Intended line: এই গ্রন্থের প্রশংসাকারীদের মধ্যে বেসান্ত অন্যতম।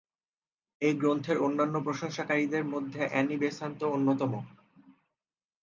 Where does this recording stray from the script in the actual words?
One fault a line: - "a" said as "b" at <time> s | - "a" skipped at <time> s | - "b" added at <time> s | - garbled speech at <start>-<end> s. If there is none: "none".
- "অন্যান্য" added at 1.4 s
- "অ্যানি" added at 3.1 s